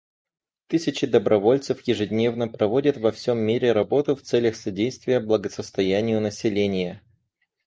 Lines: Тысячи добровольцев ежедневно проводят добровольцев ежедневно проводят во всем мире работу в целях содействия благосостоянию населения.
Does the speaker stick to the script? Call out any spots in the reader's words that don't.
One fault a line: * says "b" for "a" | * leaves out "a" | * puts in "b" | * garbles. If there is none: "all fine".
* leaves out "добровольцев ежедневно проводят"